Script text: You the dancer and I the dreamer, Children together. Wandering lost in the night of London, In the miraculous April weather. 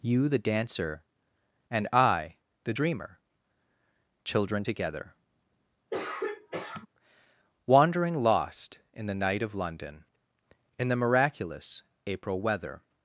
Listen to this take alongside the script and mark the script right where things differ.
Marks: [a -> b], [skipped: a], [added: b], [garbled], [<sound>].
You the dancer and I the dreamer, Children together. [throat clearing] Wandering lost in the night of London, In the miraculous April weather.